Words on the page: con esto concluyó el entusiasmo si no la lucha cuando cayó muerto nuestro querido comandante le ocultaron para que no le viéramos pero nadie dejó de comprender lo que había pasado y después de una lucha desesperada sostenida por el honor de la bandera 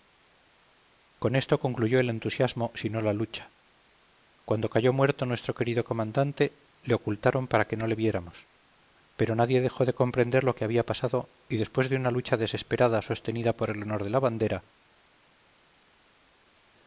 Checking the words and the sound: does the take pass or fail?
pass